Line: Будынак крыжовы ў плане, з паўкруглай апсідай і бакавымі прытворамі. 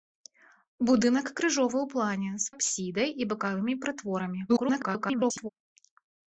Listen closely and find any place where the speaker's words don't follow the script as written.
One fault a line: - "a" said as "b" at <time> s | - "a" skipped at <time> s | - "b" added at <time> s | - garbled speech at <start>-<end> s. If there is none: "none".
- "паўкруглай" skipped at 2.5 s
- garbled speech at 4.5-5.5 s